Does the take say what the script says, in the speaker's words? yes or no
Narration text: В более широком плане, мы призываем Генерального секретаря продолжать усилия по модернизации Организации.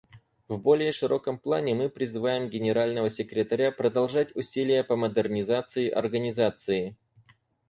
yes